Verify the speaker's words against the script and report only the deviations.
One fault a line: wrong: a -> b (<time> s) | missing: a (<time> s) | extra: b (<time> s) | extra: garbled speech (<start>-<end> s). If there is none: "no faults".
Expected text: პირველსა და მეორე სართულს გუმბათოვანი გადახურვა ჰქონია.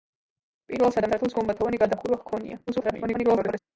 missing: მეორე (1.1 s)
extra: garbled speech (2.7-3.6 s)